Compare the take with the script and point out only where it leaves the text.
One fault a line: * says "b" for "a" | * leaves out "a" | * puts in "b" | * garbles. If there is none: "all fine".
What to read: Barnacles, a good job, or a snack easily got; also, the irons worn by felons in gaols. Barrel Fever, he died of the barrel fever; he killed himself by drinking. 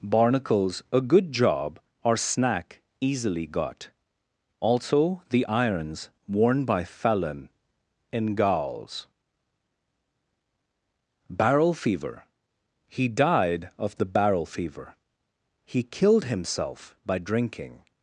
* leaves out "a"
* says "felon" for "felons"